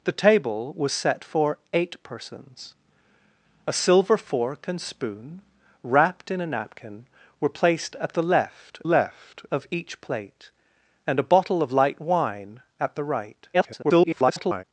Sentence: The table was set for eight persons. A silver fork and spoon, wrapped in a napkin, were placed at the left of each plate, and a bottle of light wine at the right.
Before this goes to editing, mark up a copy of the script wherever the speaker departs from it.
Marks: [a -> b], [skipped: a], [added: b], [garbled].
The table was set for eight persons. A silver fork and spoon, wrapped in a napkin, were placed at the left [added: left] of each plate, and a bottle of light wine at the right. [garbled]